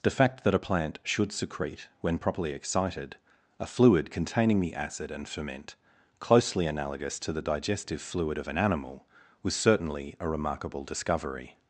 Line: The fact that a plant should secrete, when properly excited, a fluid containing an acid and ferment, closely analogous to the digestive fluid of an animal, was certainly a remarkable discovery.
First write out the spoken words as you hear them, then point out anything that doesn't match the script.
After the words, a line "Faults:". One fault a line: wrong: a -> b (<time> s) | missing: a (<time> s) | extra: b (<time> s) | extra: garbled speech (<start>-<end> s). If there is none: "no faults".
The fact that a plant should secrete, when properly excited, a fluid containing the acid and ferment, closely analogous to the digestive fluid of an animal, was certainly a remarkable discovery.
Faults:
wrong: an -> the (4.6 s)